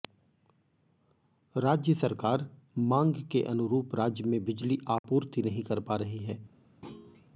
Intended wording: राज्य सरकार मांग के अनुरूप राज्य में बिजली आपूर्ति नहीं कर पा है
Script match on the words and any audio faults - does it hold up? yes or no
no